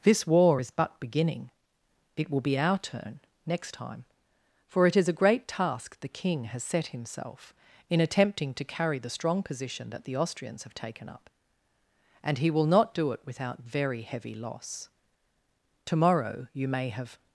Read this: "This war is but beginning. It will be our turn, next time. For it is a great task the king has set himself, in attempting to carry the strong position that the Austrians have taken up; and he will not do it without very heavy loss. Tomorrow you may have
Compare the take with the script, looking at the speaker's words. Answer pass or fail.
pass